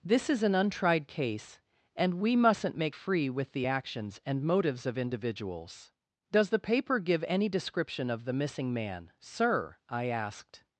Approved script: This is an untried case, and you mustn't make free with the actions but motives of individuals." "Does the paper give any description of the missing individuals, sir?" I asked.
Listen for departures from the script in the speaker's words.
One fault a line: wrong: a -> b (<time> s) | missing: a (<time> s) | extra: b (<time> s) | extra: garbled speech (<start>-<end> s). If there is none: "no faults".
wrong: you -> we (2.1 s)
wrong: but -> and (4.3 s)
wrong: individuals -> man (8.7 s)